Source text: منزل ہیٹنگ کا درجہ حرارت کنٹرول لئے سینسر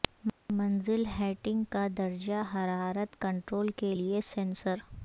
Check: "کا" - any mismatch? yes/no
no